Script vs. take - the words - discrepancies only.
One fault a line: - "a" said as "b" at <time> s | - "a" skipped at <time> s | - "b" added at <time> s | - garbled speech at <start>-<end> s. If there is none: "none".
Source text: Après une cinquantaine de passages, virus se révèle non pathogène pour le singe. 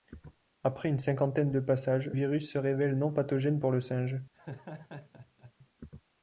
none